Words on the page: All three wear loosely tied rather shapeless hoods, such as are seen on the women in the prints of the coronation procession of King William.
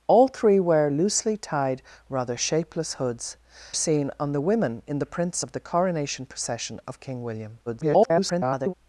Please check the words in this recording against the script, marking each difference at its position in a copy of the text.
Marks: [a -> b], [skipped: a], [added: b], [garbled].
All three wear loosely tied rather shapeless hoods, [skipped: such as are] seen on the women in the prints of the coronation procession of King William. [garbled]